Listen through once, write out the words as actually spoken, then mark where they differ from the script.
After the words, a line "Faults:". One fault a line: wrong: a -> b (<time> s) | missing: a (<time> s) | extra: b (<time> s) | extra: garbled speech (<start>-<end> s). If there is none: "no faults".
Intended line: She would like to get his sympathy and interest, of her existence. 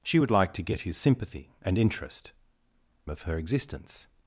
She would like to get his sympathy and interest, of her existence.
Faults:
no faults